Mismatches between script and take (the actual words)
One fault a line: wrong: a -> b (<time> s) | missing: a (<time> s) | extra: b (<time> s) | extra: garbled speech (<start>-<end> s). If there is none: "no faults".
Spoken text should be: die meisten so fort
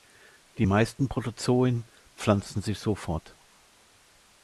extra: protozoen pflanzen sich (1.0 s)